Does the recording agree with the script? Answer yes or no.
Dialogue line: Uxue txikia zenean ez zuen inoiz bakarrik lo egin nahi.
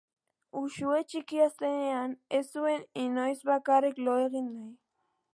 yes